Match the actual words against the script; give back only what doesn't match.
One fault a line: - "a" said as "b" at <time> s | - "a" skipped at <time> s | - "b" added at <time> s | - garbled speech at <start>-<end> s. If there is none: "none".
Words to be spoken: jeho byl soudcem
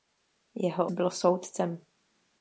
none